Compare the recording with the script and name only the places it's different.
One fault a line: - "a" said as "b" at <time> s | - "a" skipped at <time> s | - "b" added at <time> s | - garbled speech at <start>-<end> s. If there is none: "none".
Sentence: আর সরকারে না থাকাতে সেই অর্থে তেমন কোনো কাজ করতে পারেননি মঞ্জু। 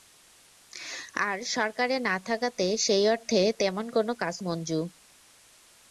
- "করতে পারেননি" skipped at 4.3 s